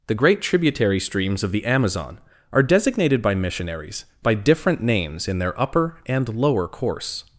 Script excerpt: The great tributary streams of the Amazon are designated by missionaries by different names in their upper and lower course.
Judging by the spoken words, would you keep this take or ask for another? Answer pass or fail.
pass